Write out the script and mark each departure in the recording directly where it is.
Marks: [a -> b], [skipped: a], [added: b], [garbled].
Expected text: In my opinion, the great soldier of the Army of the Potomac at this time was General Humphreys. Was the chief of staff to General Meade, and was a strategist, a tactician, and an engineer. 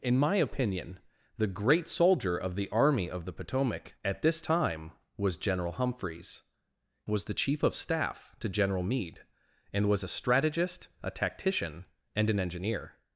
In my opinion, the great soldier of the Army of the Potomac at this time was General Humphreys. Was the chief of staff to General Meade, and was a strategist, a tactician, and an engineer.